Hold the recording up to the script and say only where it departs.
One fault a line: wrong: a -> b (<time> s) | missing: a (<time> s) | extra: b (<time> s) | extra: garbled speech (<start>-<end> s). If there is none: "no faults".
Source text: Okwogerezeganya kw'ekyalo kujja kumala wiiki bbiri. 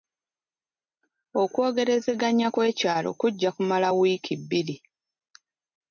no faults